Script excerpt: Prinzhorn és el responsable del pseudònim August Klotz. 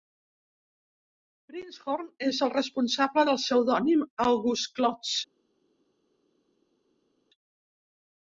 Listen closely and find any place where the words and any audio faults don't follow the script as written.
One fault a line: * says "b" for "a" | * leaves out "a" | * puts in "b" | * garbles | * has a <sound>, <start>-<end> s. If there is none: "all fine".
all fine